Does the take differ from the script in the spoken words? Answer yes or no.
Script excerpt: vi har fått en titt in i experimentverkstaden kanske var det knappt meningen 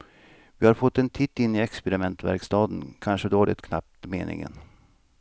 no